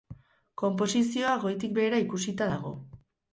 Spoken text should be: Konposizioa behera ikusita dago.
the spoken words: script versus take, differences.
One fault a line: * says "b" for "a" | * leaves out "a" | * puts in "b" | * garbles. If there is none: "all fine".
* puts in "goitik"